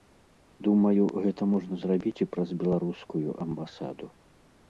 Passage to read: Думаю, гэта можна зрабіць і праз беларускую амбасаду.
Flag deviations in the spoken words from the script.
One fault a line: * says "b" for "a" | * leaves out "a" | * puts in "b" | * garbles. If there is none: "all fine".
all fine